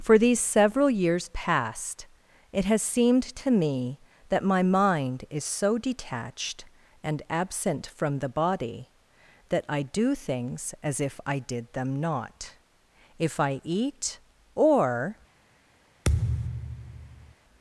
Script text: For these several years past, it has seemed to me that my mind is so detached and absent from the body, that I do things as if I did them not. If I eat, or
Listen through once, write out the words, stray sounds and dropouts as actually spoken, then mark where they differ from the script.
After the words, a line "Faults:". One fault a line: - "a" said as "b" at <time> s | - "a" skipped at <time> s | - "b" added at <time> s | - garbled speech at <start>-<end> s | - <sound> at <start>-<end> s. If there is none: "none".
For these several years past, it has seemed to me that my mind is so detached and absent from the body, that I do things as if I did them not. If I eat, or
Faults:
- thud at 16.0-17.3 s